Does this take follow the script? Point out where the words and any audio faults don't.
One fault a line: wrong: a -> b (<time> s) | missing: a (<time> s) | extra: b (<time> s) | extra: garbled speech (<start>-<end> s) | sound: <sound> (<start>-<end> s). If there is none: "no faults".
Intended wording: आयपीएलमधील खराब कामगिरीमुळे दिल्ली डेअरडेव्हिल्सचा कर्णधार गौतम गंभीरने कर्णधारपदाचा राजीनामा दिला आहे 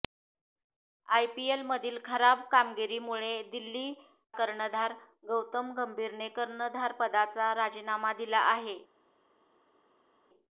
missing: डेअरडेव्हिल्सचा (3.9 s)